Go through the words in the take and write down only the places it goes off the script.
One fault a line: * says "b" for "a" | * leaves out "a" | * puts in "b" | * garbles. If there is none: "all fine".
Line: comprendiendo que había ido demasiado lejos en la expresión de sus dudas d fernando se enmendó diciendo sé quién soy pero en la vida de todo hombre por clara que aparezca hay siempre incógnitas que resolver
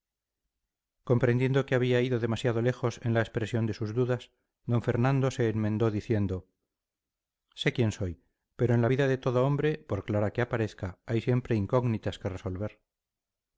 all fine